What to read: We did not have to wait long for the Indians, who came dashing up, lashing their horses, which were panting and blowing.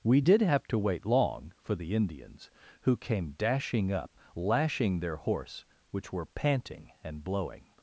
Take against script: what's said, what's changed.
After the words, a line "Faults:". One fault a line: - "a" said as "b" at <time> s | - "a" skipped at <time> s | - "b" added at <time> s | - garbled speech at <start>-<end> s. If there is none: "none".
We did have to wait long for the Indians, who came dashing up, lashing their horse, which were panting and blowing.
Faults:
- "not" skipped at 0.4 s
- "horses" said as "horse" at 5.2 s